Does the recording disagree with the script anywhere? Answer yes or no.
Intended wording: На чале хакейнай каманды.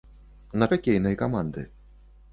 yes